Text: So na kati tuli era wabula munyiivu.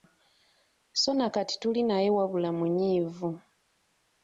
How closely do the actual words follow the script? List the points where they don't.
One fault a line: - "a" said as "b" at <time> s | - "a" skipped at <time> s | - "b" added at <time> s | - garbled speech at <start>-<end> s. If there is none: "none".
- "era" said as "naye" at 1.8 s